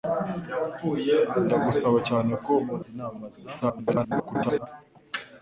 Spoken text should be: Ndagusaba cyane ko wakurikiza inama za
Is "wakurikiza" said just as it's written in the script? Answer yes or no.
no